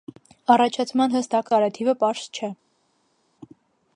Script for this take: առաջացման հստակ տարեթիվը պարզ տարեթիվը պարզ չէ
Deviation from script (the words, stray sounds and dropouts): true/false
true